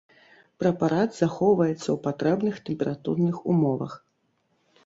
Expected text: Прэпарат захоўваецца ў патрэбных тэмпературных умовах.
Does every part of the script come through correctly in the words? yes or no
yes